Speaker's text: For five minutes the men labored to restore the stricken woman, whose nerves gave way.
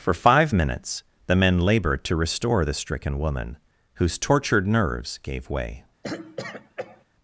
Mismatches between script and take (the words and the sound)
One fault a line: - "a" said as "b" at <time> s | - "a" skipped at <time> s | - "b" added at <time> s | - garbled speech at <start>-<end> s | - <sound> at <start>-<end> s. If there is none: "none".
- "tortured" added at 4.2 s
- throat clearing at 6.0-7.0 s